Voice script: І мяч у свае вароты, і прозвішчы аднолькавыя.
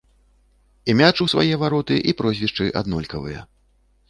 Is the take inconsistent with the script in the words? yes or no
no